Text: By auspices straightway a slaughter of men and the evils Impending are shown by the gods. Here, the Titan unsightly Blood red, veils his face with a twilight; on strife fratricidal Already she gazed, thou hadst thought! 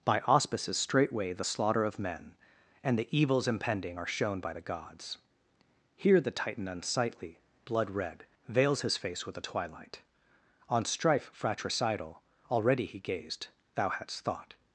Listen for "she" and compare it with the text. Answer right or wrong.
wrong